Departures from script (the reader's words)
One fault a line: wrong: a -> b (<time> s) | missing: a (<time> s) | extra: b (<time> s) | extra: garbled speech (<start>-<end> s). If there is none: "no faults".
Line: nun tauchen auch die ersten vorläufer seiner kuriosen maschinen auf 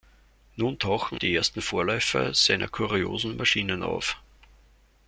missing: auch (1.2 s)